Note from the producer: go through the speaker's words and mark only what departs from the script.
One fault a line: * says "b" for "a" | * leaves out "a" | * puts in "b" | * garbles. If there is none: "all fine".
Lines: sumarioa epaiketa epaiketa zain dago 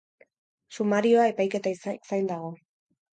* leaves out "epaiketa"